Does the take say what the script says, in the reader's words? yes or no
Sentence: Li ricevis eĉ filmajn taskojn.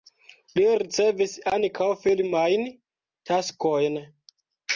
no